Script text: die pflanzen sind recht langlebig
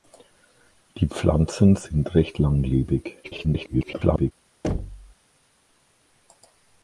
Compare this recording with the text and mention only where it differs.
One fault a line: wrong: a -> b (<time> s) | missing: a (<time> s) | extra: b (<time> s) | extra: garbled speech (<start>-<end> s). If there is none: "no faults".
extra: garbled speech (3.2-4.3 s)